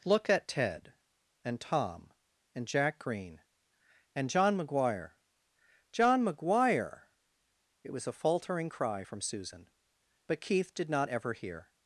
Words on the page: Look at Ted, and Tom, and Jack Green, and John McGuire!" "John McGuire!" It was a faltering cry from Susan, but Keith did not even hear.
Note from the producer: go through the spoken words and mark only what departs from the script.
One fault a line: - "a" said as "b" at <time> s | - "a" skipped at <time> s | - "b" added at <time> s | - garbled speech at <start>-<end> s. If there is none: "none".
- "even" said as "ever" at 11.1 s